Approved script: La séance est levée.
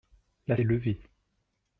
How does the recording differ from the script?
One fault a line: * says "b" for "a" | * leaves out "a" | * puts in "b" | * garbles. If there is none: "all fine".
* leaves out "séance"